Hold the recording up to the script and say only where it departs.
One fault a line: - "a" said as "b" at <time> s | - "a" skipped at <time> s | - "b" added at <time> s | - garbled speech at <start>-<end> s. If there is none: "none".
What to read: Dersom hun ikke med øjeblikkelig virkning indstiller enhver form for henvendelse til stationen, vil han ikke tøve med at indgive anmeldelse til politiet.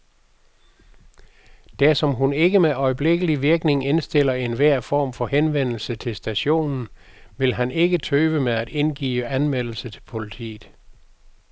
none